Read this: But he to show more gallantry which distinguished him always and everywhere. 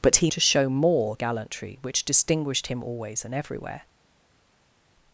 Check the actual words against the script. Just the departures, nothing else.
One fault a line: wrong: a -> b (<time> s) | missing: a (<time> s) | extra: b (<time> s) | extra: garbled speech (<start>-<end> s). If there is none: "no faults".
no faults